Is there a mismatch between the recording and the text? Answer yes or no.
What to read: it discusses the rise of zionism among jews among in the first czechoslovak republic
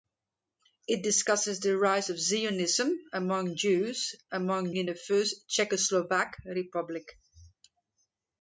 no